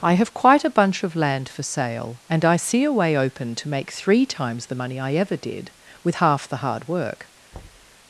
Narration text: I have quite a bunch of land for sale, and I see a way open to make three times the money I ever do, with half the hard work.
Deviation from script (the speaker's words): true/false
true